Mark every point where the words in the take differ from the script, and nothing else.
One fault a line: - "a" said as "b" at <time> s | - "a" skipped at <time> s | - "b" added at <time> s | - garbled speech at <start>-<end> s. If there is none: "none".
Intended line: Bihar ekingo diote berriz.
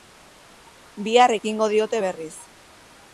none